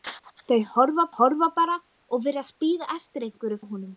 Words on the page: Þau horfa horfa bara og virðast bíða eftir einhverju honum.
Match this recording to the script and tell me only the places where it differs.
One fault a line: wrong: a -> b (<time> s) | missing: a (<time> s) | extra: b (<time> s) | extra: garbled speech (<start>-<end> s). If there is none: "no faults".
no faults